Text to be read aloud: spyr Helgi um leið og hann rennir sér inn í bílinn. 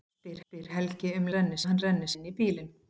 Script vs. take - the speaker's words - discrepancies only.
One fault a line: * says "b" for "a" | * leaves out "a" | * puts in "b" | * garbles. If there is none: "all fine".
* puts in "spyr"
* says "rennir" for "leið"
* leaves out "sér"